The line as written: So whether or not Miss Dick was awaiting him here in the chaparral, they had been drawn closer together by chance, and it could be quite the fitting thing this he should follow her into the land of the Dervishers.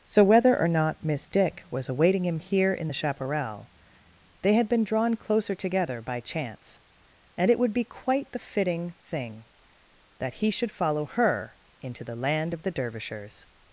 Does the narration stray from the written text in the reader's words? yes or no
yes